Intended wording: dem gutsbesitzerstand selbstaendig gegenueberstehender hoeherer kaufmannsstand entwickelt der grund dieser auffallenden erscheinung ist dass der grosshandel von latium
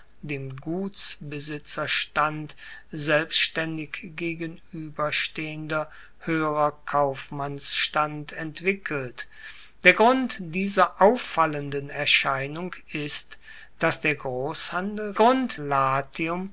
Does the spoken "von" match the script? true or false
false